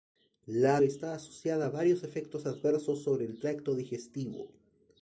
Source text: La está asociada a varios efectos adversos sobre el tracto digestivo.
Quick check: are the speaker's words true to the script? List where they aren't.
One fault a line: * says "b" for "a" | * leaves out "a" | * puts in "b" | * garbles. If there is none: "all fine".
all fine